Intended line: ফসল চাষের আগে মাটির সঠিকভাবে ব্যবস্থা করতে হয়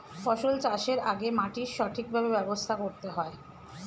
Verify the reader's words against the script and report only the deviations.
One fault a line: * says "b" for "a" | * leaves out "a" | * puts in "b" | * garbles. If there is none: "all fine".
all fine